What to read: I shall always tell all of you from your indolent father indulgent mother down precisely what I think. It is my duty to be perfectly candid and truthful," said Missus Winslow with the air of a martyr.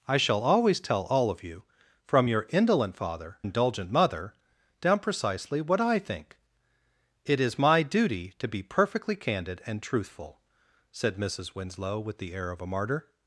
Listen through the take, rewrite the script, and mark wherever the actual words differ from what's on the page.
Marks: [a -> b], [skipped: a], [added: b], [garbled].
I shall always tell all of you from your indolent father indulgent mother down precisely what I think. It is my duty to be perfectly candid and truthful," said Missus Winslow with the air of a martyr.